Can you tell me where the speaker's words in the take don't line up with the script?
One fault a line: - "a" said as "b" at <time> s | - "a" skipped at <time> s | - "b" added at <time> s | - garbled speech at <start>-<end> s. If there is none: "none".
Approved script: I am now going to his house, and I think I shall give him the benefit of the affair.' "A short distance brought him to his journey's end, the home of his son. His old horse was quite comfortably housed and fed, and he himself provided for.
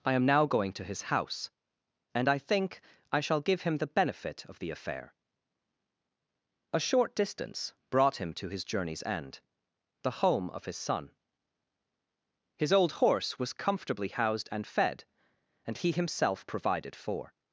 - "quite" skipped at 13.5 s